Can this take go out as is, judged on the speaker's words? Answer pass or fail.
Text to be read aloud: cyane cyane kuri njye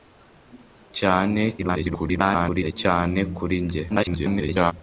fail